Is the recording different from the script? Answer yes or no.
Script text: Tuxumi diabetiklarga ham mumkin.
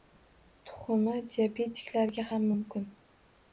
no